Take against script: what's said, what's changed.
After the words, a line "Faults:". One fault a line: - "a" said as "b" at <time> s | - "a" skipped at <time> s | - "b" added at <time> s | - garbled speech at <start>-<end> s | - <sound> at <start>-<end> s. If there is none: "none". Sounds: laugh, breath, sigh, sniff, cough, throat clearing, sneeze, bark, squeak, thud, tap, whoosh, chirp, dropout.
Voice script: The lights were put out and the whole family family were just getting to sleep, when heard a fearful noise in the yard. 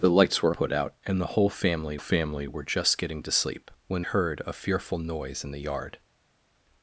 The lights were put out and the whole family family were just getting to sleep, when heard a fearful noise in the yard.
Faults:
none